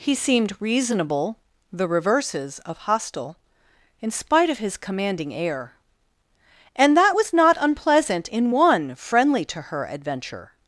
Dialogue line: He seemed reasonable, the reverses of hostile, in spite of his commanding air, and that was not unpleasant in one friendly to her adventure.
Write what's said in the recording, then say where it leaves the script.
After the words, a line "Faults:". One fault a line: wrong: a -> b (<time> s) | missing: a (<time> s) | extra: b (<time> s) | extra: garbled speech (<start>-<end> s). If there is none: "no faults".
He seemed reasonable, the reverses of hostile, in spite of his commanding air, and that was not unpleasant in one friendly to her adventure.
Faults:
no faults